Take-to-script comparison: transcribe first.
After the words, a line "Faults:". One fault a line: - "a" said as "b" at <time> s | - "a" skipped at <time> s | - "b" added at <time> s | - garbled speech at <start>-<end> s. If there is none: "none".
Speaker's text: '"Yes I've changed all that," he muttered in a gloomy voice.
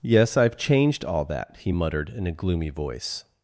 '"Yes I've changed all that," he muttered in a gloomy voice.
Faults:
none